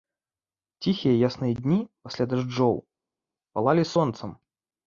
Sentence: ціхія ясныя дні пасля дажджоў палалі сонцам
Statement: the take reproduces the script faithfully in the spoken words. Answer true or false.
true